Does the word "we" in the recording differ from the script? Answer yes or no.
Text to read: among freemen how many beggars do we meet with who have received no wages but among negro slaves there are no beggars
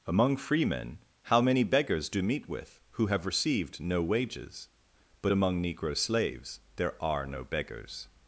yes